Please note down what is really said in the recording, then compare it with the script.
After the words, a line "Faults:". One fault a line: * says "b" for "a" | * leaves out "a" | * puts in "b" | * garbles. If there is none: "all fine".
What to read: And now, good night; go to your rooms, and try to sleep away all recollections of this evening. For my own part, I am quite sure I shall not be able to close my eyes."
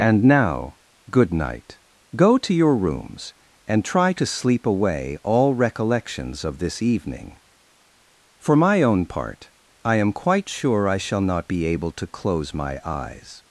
And now, good night; go to your rooms, and try to sleep away all recollections of this evening. For my own part, I am quite sure I shall not be able to close my eyes."
Faults:
all fine